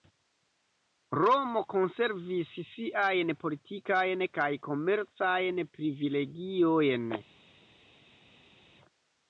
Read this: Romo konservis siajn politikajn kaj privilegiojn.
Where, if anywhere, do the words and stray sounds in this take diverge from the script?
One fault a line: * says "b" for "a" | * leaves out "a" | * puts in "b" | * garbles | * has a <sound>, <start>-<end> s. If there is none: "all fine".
* puts in "komercajn"